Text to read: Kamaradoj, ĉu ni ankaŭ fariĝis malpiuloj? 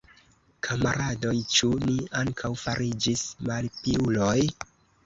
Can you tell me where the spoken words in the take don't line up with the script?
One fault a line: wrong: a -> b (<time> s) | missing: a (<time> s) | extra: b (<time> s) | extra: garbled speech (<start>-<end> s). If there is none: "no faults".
no faults